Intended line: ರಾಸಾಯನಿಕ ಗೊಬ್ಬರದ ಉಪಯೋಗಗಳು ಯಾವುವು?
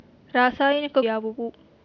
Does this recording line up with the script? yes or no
no